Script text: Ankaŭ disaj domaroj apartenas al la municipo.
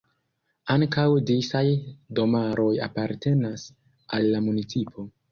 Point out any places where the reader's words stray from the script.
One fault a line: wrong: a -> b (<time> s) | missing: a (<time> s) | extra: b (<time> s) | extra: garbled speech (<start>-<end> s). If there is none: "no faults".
no faults